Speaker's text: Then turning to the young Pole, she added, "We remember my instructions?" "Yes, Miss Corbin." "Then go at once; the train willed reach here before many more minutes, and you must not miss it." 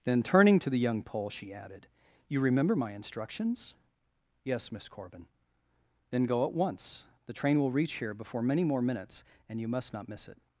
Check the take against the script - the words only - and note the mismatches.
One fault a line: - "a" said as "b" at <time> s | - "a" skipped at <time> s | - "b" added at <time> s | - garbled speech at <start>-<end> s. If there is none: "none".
- "We" said as "You" at 2.3 s
- "willed" said as "will" at 7.6 s